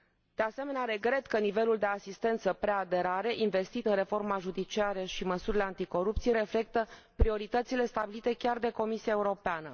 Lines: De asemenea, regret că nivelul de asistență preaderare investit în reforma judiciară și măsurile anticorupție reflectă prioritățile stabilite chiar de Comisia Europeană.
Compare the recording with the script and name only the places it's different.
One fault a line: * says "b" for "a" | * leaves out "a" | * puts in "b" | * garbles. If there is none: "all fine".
all fine